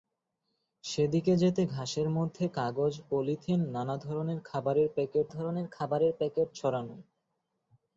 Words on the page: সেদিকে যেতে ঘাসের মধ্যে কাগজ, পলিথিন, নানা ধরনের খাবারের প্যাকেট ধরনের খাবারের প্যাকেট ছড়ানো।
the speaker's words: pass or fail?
pass